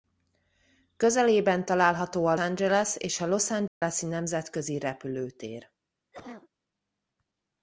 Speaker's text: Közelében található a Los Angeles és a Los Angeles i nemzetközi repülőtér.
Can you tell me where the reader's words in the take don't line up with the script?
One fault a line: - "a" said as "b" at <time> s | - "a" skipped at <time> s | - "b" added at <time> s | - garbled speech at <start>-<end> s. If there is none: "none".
- "Los" skipped at 2.4 s